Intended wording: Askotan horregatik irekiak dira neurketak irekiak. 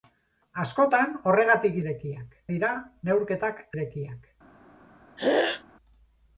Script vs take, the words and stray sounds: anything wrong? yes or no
yes